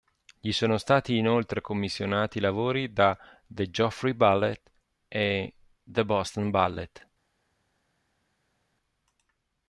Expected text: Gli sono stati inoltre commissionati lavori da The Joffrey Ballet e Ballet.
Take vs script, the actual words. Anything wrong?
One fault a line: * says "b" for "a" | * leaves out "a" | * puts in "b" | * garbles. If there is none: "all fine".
* puts in "the Boston"